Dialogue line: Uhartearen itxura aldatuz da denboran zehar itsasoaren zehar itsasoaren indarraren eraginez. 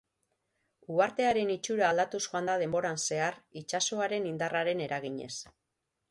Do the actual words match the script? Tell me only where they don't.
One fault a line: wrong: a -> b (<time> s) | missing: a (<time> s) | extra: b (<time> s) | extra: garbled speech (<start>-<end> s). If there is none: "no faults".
extra: joan (2.3 s)
missing: zehar itsasoaren (4.3 s)